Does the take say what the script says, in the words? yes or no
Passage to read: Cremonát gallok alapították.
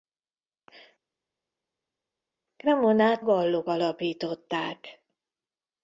yes